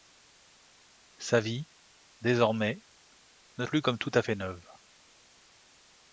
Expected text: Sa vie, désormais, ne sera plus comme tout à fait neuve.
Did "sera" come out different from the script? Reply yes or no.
yes